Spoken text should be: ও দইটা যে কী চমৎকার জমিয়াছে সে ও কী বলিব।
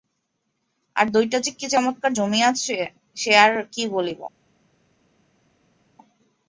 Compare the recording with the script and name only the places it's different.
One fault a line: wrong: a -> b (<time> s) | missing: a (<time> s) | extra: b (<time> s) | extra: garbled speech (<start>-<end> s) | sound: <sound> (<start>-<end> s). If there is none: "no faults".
wrong: ও -> আর (0.9 s)
wrong: ও -> আর (3.4 s)